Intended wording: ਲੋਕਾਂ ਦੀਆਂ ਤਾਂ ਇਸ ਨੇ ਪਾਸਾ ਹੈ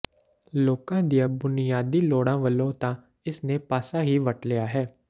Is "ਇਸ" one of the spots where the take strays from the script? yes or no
no